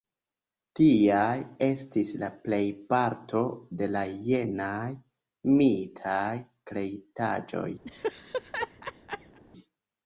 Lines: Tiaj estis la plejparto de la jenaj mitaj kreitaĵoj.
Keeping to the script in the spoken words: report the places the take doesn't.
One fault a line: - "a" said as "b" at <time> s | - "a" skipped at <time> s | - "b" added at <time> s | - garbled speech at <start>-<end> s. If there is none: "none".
none